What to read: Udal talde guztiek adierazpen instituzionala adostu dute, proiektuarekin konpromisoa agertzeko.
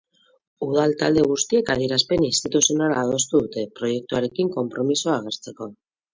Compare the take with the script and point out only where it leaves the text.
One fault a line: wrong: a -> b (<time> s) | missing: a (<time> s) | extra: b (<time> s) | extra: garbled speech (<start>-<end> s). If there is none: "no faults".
no faults